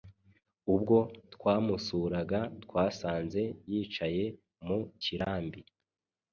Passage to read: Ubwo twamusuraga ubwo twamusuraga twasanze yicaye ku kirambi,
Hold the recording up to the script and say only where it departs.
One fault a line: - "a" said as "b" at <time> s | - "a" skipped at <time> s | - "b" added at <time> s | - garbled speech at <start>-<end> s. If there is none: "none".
- "ubwo twamusuraga" skipped at 2.4 s
- "ku" said as "mu" at 4.7 s